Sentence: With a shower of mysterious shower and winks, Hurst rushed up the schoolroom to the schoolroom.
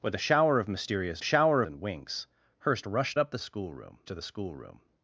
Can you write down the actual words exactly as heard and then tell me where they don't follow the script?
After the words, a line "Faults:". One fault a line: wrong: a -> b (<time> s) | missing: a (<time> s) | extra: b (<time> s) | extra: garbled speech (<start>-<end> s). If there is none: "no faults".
With a shower of mysterious shower and winks, Hurst rushed up the schoolroom to the schoolroom.
Faults:
no faults